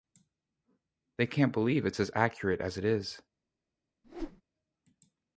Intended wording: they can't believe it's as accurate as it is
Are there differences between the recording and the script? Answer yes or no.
no